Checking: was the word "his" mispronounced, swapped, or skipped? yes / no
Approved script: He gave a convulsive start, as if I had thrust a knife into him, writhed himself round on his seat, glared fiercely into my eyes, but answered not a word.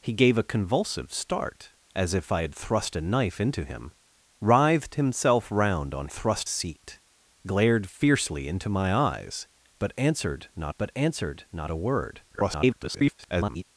yes